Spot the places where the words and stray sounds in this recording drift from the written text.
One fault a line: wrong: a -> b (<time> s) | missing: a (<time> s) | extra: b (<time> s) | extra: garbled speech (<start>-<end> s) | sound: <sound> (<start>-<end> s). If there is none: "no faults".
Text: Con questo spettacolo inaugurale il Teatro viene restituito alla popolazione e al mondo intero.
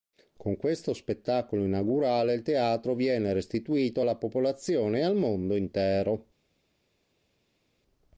no faults